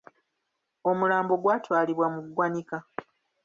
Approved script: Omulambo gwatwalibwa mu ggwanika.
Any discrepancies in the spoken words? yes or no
no